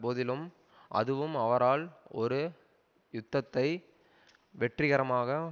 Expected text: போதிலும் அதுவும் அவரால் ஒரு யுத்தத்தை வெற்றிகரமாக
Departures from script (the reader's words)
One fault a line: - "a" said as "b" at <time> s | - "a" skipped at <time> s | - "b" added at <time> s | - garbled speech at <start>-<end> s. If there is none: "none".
none